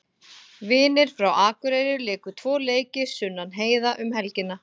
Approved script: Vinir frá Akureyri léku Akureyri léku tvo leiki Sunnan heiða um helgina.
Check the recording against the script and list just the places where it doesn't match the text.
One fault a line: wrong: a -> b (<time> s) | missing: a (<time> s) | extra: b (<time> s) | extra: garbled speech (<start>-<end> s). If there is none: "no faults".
missing: Akureyri léku (2.3 s)